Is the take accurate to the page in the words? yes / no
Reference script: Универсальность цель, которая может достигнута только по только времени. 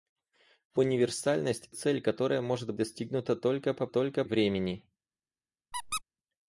yes